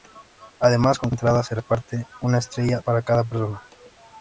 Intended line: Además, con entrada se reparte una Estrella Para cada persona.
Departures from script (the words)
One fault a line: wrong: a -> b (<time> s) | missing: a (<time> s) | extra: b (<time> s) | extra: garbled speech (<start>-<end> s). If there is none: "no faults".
no faults